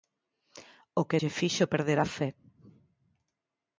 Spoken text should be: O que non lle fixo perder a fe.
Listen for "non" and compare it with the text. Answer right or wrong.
wrong